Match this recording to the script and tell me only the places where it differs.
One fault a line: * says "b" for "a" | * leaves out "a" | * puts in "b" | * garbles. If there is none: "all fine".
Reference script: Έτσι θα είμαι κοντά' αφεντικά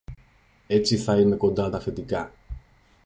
all fine